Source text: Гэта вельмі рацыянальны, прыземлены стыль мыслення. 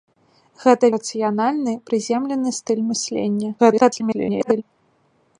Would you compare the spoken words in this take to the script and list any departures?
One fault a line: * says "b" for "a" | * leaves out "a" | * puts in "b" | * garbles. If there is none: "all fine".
* leaves out "вельмі"
* garbles